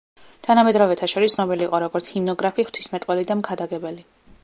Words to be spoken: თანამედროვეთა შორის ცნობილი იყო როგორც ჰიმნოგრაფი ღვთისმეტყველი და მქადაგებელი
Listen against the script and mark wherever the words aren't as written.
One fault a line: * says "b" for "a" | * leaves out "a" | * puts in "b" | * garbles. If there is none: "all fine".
all fine